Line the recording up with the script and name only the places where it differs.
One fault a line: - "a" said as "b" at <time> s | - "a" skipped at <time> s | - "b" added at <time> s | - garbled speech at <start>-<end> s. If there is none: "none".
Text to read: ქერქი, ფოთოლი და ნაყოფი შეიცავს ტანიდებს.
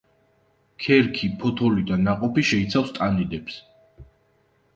none